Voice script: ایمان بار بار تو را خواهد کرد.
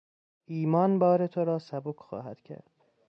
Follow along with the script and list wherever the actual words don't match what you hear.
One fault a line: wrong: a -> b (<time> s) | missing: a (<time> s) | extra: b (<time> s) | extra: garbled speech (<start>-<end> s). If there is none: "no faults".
missing: بار (1.3 s)
extra: سبک (1.6 s)